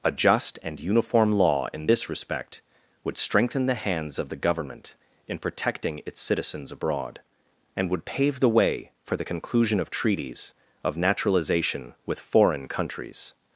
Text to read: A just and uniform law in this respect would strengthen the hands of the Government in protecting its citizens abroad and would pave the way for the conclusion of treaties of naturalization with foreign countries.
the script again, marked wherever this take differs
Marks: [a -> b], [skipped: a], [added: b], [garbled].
A just and uniform law in this respect would strengthen the hands of the Government in protecting its citizens abroad and would pave the way for the conclusion of treaties of naturalization with foreign countries.